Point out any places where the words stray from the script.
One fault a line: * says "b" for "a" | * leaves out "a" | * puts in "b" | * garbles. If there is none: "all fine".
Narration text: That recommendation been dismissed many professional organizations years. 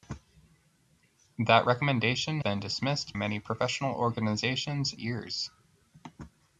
all fine